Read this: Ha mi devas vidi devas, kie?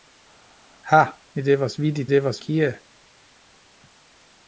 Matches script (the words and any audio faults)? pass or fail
pass